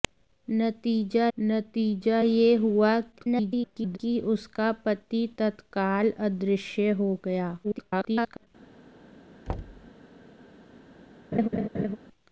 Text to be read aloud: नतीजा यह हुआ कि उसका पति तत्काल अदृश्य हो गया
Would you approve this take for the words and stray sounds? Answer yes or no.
no